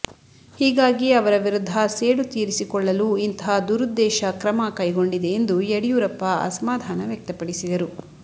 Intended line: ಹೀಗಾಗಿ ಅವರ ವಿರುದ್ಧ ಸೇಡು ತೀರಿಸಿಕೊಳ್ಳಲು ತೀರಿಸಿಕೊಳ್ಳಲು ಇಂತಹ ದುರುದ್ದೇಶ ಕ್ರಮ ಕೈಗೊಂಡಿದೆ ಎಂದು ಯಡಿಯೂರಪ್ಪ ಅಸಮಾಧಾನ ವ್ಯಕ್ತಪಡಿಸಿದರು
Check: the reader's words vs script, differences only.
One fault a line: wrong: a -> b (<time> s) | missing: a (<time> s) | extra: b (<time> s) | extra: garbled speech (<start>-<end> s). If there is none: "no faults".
missing: ತೀರಿಸಿಕೊಳ್ಳಲು (3.2 s)